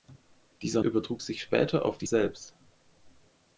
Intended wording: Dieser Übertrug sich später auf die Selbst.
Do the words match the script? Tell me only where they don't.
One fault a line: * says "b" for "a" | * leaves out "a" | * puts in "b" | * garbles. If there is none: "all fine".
all fine